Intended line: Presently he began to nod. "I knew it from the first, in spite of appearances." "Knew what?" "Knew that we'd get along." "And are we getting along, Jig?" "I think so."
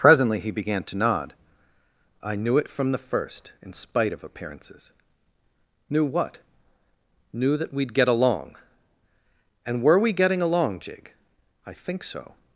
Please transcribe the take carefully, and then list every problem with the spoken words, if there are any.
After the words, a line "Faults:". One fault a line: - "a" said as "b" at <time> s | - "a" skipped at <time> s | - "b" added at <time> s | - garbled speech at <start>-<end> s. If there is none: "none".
Presently he began to nod. "I knew it from the first, in spite of appearances." "Knew what?" "Knew that we'd get along." "And were we getting along, Jig?" "I think so."
Faults:
- "are" said as "were" at 9.8 s